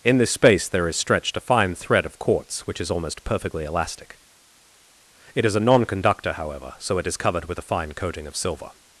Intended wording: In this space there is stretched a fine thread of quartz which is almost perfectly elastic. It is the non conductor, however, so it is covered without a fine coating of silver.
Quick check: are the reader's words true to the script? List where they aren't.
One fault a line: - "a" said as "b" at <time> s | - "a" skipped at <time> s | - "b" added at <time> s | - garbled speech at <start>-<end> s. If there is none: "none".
- "the" said as "a" at 5.5 s
- "without" said as "with" at 7.5 s